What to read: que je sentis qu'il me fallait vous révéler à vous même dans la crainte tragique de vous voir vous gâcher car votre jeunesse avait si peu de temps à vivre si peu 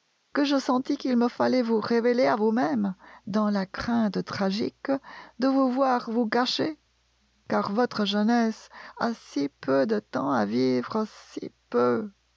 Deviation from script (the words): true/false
true